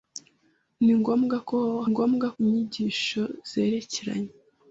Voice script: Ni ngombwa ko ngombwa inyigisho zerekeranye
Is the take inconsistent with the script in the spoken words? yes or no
no